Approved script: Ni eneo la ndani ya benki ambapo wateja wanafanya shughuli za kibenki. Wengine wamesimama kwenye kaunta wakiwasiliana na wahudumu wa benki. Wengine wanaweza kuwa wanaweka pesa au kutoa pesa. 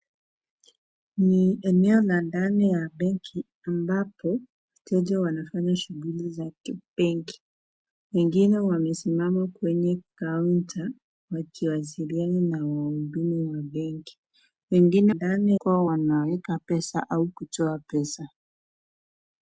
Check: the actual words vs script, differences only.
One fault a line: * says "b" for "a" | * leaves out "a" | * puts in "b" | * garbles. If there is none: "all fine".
* says "ndani" for "wanaweza"